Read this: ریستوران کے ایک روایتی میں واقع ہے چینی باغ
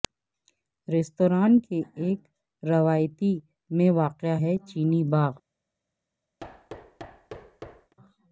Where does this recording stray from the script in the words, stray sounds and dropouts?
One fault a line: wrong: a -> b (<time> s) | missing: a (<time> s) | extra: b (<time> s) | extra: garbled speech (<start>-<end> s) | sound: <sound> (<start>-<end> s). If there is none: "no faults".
sound: thud (6.4-7.9 s)